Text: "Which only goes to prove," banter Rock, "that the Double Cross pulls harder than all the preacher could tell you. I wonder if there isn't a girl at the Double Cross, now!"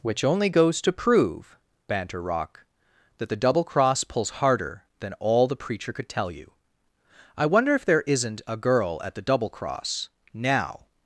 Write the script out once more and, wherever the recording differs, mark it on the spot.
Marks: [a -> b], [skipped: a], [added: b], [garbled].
"Which only goes to prove," banter Rock, "that the Double Cross pulls harder than all the preacher could tell you. I wonder if there isn't a girl at the Double Cross, now!"